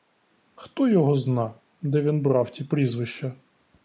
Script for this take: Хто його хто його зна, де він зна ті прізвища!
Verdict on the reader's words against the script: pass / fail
fail